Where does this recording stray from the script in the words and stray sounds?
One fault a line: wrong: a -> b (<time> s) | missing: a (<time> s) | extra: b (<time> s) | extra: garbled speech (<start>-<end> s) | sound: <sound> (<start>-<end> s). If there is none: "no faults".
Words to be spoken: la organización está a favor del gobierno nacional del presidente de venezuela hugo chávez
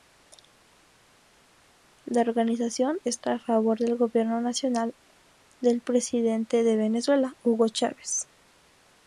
no faults